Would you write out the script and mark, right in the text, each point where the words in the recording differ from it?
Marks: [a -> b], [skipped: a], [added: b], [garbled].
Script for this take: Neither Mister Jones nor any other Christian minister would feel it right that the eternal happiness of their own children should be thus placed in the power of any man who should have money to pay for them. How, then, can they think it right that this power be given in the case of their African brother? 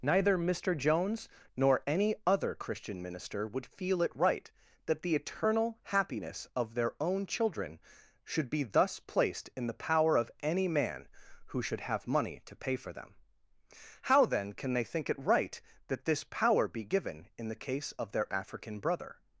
Neither Mister Jones nor any other Christian minister would feel it right that the eternal happiness of their own children should be thus placed in the power of any man who should have money to pay for them. How, then, can they think it right that this power be given in the case of their African brother?